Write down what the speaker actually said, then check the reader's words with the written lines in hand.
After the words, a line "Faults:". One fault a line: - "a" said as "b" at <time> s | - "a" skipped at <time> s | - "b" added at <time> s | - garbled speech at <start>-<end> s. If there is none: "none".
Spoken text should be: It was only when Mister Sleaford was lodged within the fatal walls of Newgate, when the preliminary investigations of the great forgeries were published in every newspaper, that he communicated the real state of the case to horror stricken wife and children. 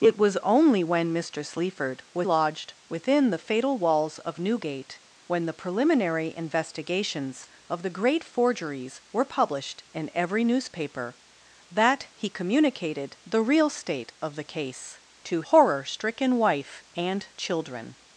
It was only when Mister Sleaford was lodged within the fatal walls of Newgate, when the preliminary investigations of the great forgeries were published in every newspaper, that he communicated the real state of the case to horror stricken wife and children.
Faults:
none